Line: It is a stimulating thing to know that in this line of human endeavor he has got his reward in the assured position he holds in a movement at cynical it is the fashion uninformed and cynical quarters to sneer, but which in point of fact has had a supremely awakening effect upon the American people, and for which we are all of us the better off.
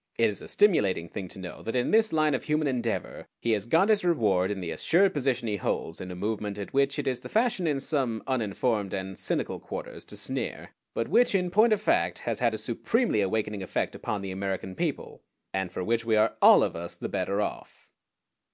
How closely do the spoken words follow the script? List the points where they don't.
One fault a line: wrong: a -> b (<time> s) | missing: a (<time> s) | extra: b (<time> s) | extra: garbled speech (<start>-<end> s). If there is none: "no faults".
wrong: cynical -> which (6.7 s)
extra: in some (7.7 s)